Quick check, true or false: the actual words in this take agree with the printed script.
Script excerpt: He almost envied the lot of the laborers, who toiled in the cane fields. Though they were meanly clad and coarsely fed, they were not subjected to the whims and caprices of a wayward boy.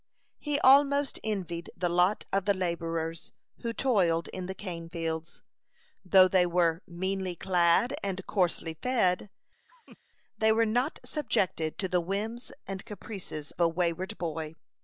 false